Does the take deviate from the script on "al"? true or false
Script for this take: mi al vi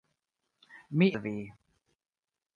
false